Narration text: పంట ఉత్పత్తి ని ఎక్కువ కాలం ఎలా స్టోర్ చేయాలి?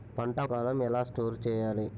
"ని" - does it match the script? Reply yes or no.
no